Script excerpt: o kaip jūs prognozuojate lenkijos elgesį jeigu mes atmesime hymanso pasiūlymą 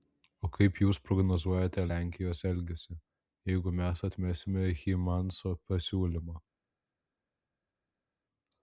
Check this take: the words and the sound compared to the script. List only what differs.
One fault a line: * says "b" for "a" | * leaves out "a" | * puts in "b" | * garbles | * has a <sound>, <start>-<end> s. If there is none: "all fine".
all fine